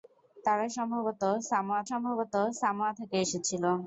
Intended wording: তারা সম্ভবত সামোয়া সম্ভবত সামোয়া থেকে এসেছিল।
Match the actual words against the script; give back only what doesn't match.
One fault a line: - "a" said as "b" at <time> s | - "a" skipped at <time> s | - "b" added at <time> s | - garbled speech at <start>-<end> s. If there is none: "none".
none